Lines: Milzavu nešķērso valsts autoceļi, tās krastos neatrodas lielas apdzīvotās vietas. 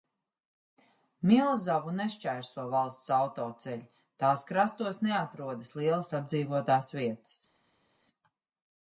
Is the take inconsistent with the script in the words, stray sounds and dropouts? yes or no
no